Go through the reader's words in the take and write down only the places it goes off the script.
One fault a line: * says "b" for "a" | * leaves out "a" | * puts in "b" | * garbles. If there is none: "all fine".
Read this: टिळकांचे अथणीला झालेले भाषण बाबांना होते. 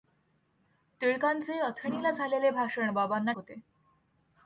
all fine